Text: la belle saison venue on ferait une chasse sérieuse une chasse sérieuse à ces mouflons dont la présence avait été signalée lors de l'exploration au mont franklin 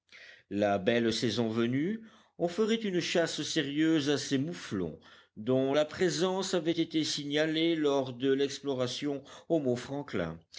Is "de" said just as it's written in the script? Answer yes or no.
yes